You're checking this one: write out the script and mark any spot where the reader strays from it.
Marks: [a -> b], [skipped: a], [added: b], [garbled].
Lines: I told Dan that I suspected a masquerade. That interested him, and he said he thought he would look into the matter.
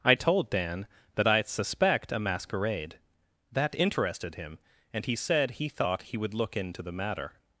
I told Dan that I [suspected -> suspect] a masquerade. That interested him, and he said he thought he would look into the matter.